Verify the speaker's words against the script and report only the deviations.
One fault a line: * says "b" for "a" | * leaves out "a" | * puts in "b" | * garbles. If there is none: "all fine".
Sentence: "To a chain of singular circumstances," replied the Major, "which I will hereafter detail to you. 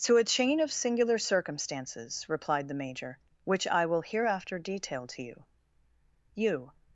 * puts in "you"